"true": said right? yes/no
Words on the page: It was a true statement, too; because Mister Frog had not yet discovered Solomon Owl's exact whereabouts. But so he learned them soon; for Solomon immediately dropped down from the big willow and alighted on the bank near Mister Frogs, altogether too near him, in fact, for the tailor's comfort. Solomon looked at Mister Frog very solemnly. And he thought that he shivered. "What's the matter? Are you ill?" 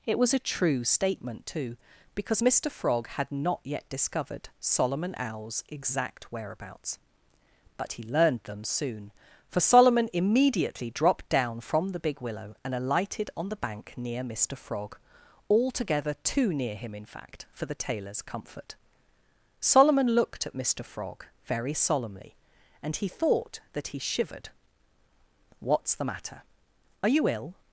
yes